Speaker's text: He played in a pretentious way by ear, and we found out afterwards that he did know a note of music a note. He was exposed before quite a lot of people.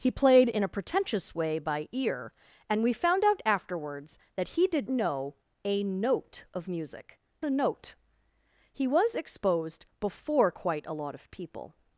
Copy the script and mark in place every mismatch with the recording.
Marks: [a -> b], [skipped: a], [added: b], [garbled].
He played in a pretentious way by ear, and we found out afterwards that he did know a note of music a note. He was exposed before quite a lot of people.